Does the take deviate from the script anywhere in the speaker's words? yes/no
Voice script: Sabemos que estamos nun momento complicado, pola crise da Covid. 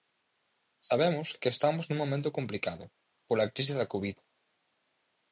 no